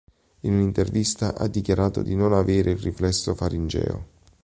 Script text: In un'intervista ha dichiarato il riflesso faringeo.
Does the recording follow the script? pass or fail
fail